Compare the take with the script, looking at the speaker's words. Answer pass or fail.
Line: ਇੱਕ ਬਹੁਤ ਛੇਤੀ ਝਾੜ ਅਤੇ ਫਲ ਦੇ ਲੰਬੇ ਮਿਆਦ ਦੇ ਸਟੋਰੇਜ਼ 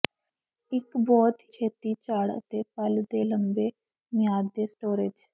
pass